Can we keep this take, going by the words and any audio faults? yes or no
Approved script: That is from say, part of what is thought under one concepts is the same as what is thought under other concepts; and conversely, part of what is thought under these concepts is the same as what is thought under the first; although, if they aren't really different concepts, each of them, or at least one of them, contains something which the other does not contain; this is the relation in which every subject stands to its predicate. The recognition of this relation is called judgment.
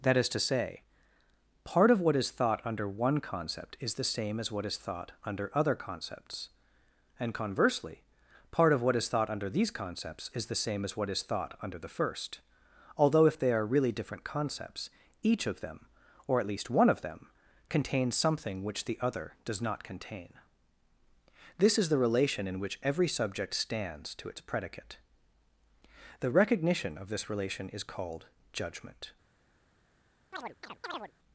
no